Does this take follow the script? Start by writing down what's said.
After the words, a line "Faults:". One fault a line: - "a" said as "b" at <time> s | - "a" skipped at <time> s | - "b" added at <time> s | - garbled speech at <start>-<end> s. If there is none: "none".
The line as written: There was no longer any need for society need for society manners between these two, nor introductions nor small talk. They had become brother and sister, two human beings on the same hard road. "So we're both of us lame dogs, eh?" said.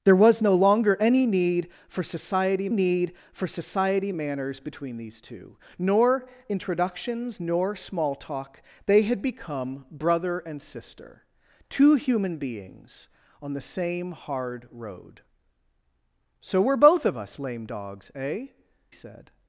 There was no longer any need for society need for society manners between these two, nor introductions nor small talk. They had become brother and sister, two human beings on the same hard road. "So we're both of us lame dogs, eh?" said.
Faults:
none